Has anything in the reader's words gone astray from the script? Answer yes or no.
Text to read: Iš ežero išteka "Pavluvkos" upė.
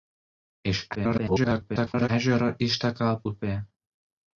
yes